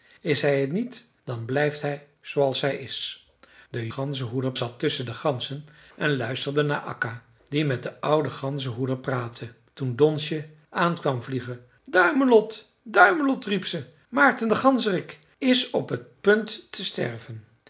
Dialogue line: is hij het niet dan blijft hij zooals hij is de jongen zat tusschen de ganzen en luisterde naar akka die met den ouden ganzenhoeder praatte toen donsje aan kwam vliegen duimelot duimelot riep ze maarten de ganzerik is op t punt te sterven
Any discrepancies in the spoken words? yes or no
yes